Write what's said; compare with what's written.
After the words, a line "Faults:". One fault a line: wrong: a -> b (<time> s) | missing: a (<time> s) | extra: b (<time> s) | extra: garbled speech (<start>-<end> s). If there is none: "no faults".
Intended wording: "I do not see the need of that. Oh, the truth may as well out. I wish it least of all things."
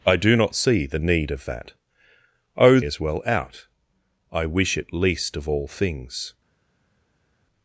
"I do not see the need of that. Oh, as well out. I wish it least of all things."
Faults:
missing: the truth may (2.8 s)